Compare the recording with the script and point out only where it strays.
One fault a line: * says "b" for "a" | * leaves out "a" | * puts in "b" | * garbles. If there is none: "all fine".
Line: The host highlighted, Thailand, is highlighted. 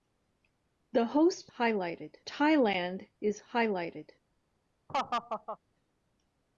all fine